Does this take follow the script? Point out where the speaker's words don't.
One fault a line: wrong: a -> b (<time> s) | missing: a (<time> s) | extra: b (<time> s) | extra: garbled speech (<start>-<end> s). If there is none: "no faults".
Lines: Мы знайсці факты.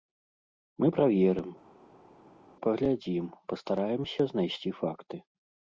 extra: праверым паглядзім пастараемся (1.0 s)